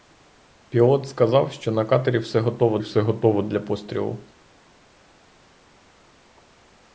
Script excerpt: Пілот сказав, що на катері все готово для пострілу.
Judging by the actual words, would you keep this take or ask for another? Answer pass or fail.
fail